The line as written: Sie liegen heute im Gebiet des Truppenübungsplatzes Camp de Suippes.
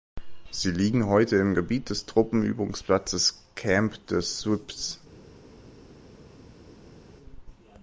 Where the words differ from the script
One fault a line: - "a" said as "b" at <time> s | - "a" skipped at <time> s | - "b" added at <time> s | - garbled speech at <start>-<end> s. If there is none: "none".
none